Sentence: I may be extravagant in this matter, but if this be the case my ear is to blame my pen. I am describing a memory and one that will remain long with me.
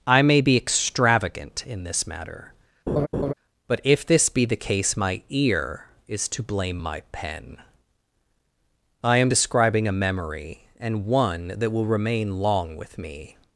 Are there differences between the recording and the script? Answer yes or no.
no